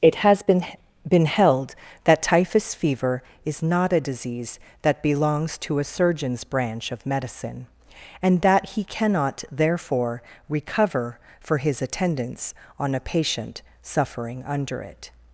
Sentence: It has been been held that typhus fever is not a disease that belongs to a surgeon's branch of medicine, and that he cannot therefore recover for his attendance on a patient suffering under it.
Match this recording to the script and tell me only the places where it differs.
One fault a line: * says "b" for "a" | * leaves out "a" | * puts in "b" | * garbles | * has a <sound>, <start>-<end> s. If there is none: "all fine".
all fine